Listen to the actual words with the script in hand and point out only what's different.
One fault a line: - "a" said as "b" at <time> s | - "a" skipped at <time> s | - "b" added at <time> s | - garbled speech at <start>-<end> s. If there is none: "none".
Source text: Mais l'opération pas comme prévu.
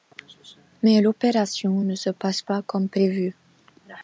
- "ne se passe" added at 1.8 s